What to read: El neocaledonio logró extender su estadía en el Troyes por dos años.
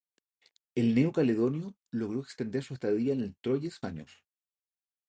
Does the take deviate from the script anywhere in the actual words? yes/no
yes